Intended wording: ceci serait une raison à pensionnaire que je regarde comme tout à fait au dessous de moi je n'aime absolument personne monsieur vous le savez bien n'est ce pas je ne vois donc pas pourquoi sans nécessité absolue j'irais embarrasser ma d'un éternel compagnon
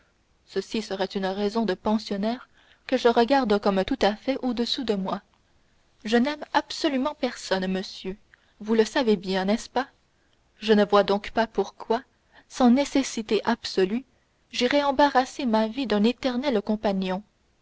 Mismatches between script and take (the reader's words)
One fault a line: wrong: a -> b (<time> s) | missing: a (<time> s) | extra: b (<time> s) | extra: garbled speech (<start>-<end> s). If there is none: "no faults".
wrong: à -> de (1.6 s)
extra: vie (15.7 s)